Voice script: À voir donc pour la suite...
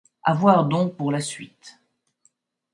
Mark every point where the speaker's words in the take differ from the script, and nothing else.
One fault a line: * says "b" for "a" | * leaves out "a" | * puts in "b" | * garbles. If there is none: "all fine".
all fine